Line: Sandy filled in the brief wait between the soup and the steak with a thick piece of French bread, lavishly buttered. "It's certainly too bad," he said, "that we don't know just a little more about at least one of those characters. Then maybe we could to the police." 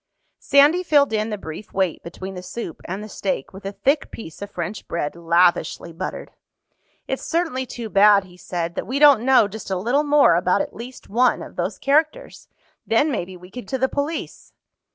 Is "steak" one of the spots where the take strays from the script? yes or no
no